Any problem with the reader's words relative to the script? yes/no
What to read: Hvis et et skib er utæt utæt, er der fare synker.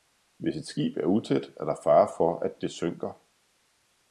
yes